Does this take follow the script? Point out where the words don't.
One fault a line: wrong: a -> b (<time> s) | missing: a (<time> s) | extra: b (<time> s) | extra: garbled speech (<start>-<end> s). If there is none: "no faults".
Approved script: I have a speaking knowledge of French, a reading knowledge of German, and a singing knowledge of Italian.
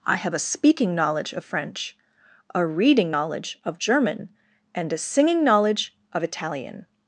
no faults